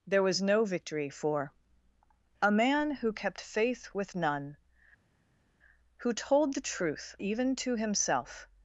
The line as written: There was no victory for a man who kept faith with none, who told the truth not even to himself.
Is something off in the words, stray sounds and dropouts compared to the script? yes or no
yes